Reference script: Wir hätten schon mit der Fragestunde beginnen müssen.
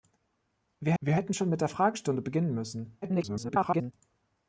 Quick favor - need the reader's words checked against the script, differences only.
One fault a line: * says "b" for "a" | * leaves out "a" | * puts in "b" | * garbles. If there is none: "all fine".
* puts in "wir"
* garbles